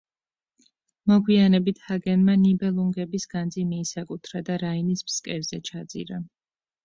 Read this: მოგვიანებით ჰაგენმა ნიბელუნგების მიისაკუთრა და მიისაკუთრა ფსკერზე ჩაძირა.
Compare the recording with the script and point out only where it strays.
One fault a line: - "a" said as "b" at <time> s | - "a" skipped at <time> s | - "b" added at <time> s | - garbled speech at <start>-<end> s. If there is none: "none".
- "განძი" added at 3.4 s
- "მიისაკუთრა" said as "რაინის" at 4.6 s